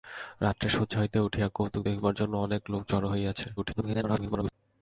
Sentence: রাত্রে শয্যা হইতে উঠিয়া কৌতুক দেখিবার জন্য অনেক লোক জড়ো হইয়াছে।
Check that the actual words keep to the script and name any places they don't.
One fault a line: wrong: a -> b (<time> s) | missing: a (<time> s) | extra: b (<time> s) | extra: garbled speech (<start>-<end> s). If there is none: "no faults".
extra: garbled speech (3.6-4.5 s)